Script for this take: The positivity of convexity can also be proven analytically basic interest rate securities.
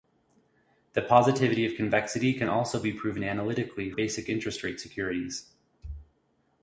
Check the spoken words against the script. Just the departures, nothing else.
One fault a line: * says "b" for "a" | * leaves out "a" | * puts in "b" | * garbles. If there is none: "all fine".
all fine